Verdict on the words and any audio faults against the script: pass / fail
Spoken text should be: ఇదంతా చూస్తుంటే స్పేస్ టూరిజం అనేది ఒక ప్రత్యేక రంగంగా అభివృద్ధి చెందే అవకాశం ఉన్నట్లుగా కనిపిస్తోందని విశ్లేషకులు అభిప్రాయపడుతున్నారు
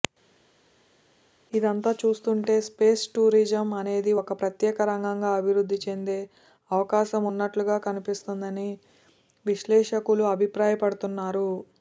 pass